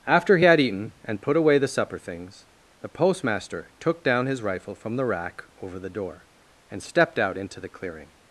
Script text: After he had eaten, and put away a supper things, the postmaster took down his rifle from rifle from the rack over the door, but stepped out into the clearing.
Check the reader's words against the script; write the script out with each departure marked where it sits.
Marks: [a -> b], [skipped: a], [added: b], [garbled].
After he had eaten, and put away [a -> the] supper things, the postmaster took down his rifle from [skipped: rifle from] the rack over the door, [but -> and] stepped out into the clearing.